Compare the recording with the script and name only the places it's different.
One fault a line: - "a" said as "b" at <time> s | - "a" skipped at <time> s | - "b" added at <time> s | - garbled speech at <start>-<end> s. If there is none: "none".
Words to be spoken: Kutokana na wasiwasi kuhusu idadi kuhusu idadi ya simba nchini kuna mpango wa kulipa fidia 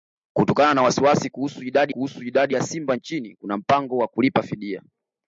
none